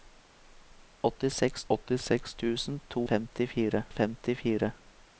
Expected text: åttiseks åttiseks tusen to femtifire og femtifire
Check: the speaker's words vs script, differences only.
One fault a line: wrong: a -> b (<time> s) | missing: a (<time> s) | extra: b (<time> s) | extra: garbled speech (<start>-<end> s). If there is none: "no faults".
no faults